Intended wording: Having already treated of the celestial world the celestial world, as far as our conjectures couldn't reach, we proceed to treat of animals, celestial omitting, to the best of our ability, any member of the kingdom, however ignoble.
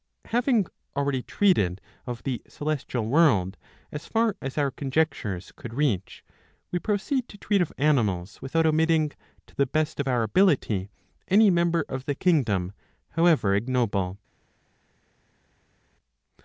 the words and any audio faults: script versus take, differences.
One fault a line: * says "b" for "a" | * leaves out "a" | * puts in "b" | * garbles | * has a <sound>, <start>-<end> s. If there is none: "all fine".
* leaves out "the celestial world"
* says "could" for "couldn't"
* says "without" for "celestial"